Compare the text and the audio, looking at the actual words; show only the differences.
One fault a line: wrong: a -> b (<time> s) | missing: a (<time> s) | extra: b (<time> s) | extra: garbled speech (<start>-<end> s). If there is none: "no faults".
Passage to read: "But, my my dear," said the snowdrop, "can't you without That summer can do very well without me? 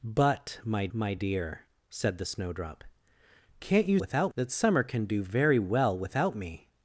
no faults